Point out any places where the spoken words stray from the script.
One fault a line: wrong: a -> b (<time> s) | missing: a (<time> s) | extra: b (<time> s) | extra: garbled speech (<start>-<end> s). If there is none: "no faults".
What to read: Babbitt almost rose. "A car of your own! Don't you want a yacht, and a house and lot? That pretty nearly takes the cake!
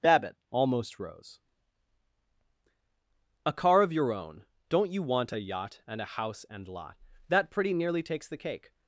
no faults